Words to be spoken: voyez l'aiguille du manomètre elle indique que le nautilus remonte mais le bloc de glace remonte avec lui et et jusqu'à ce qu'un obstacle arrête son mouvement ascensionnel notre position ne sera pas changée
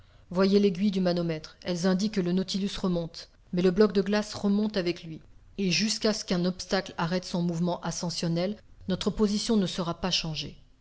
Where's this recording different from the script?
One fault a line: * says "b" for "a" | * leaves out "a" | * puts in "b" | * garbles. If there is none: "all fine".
* leaves out "et"